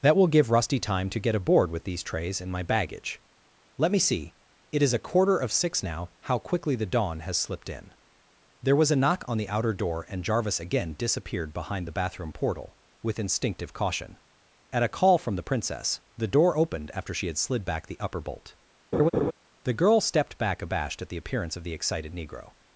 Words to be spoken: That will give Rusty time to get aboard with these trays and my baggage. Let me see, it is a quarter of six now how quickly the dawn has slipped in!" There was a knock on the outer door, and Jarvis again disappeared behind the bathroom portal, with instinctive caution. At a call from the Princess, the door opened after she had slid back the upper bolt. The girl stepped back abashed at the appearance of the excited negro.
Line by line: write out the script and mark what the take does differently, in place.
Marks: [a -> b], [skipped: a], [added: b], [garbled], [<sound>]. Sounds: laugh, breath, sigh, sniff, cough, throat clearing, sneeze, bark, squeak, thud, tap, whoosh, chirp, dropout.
That will give Rusty time to get aboard with these trays and my baggage. Let me see, it is a quarter of six now how quickly the dawn has slipped in!" There was a knock on the outer door, and Jarvis again disappeared behind the bathroom portal, with instinctive caution. At a call from the Princess, the door opened after she had slid back the upper bolt. [laugh] The girl stepped back abashed at the appearance of the excited negro.